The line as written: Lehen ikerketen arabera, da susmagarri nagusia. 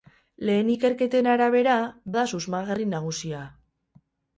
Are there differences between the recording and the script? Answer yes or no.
no